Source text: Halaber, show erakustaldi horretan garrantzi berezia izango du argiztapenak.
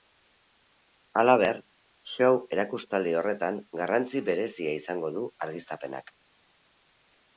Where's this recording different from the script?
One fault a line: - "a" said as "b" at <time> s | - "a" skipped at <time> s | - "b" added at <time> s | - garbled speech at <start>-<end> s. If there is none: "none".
none